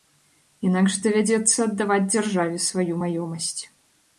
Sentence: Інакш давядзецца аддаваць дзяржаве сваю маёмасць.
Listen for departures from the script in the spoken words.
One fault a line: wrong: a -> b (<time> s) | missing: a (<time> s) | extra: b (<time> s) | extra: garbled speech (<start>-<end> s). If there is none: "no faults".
no faults